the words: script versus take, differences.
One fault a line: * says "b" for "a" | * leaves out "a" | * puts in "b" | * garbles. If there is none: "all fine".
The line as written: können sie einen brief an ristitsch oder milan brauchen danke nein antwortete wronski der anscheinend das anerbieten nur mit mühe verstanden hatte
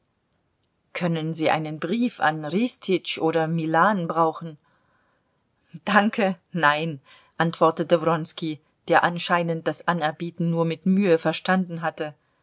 all fine